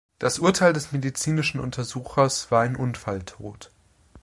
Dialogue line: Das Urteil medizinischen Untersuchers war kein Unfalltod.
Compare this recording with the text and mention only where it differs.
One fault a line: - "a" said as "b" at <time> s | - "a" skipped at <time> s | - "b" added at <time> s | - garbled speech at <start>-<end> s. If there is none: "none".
- "des" added at 0.7 s
- "kein" said as "ein" at 2.6 s